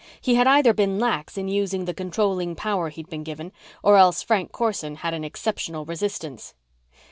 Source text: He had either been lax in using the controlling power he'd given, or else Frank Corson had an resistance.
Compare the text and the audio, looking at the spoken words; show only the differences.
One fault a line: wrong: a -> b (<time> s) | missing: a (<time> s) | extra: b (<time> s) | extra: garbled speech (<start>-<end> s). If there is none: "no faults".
extra: been (3.1 s)
extra: exceptional (5.2 s)